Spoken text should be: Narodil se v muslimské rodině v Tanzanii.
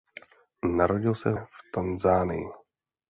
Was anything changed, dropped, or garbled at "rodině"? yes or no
yes